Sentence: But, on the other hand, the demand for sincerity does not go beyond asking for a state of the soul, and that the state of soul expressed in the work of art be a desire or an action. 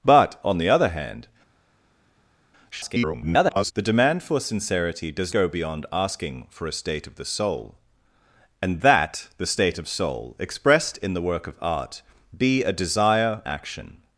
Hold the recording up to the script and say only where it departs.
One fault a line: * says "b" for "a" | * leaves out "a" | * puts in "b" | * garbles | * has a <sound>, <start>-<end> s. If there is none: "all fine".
* garbles
* leaves out "not"
* leaves out "or an"